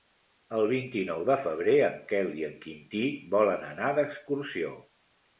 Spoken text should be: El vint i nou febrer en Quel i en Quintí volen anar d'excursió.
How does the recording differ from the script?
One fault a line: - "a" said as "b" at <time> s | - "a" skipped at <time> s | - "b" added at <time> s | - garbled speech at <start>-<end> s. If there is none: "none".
- "de" added at 1.2 s